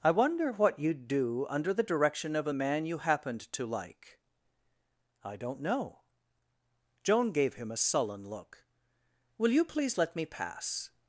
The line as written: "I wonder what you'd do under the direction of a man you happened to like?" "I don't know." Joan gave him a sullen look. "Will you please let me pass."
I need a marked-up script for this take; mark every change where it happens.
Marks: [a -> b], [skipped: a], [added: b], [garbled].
"I wonder what you'd do under the direction of a man you happened to like?" "I don't know." Joan gave him a sullen look. "Will you please let me pass."